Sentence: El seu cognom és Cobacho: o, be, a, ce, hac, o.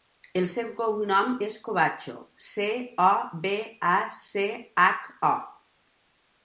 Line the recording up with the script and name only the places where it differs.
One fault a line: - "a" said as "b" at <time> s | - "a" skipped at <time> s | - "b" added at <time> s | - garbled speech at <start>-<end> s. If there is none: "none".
- "ce" added at 2.5 s